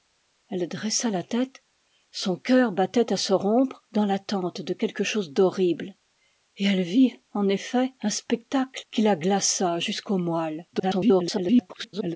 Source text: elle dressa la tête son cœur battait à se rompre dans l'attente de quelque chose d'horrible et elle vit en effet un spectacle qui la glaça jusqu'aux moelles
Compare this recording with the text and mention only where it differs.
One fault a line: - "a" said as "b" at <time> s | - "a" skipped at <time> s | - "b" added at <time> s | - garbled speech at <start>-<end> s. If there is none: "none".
- garbled speech at 10.7-12.2 s